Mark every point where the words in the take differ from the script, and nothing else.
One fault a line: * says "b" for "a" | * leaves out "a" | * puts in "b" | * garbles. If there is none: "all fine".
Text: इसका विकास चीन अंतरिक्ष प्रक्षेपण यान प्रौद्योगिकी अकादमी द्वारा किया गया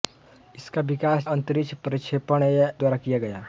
* leaves out "चीन"
* leaves out "यान प्रौद्योगिकी अकादमी"